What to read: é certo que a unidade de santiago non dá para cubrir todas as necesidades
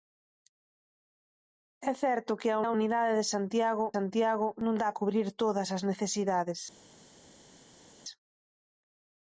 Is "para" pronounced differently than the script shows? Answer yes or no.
yes